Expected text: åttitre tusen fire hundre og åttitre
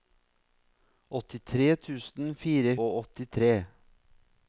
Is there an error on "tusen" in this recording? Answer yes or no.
no